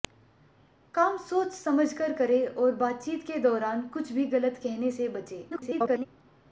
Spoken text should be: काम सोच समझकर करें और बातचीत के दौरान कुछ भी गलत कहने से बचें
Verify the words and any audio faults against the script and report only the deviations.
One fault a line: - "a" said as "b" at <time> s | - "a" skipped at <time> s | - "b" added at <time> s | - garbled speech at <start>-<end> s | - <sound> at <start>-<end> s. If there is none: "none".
- garbled speech at 5.5-6.1 s